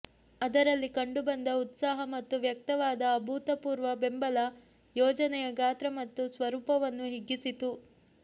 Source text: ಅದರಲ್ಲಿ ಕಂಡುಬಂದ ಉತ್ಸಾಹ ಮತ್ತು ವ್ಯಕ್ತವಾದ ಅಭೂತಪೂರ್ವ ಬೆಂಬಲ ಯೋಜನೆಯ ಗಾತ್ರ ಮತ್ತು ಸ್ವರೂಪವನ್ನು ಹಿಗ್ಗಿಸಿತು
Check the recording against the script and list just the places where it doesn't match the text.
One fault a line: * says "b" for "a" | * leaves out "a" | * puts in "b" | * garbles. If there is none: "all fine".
all fine